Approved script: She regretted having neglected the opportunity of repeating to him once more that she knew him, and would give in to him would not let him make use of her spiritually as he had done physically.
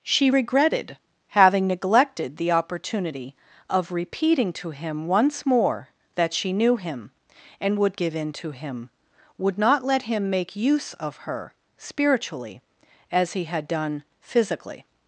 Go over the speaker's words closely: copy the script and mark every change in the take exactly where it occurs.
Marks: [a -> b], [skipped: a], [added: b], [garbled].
She regretted having neglected the opportunity of repeating to him once more that she knew him, and would give in to him would not let him make use of her spiritually as he had done physically.